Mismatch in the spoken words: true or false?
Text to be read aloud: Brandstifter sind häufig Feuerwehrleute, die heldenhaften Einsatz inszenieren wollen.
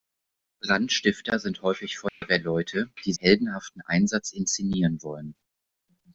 false